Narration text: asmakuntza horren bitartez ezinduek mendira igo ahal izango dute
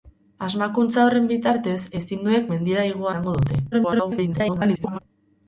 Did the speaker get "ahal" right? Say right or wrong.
wrong